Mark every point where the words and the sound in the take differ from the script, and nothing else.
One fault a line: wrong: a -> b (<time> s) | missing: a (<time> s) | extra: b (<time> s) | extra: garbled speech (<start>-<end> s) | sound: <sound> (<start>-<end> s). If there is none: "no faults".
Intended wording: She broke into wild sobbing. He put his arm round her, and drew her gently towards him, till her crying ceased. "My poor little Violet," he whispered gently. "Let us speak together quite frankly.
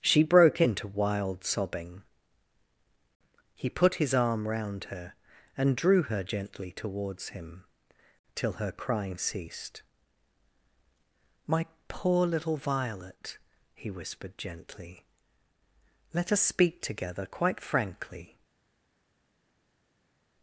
no faults